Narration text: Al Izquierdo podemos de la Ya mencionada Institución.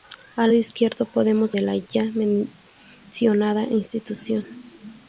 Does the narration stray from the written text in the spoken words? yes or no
no